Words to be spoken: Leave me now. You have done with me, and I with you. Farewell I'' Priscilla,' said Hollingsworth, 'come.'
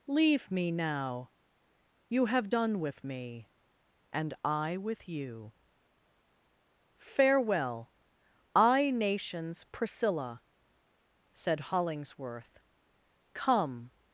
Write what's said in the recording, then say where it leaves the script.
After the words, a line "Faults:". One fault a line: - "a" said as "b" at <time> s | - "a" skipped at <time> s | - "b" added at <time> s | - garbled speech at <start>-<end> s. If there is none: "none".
Leave me now. You have done with me, and I with you. Farewell I'' nations Priscilla,' said Hollingsworth, 'come.'
Faults:
- "nations" added at 8.9 s